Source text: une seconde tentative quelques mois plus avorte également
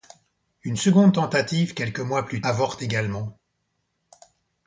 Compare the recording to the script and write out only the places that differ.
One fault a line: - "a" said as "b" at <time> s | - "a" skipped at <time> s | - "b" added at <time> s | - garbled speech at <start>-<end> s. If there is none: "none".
none